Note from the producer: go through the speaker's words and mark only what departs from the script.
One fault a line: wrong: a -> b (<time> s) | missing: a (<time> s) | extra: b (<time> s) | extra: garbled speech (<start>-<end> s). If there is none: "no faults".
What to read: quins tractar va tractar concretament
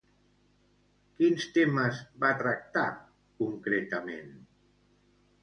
wrong: tractar -> temes (1.6 s)